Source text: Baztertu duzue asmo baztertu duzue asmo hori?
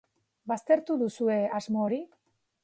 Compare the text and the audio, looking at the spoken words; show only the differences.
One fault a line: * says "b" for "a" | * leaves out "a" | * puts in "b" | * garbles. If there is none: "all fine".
* leaves out "baztertu duzue asmo"